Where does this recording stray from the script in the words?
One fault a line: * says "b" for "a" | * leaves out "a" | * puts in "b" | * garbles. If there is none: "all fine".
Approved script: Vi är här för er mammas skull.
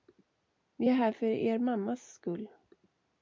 all fine